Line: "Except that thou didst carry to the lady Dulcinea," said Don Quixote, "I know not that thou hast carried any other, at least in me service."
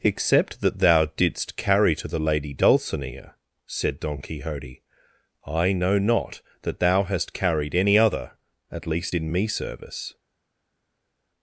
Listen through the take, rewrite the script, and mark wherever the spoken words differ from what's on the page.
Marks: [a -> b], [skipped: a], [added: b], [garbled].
"Except that thou didst carry to the lady Dulcinea," said Don Quixote, "I know not that thou hast carried any other, at least in me service."